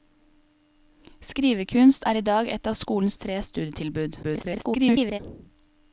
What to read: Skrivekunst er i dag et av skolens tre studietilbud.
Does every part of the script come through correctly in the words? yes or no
no